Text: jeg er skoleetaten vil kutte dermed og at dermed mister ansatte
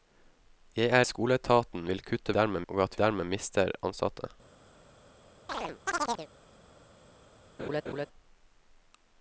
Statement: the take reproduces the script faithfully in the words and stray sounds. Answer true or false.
false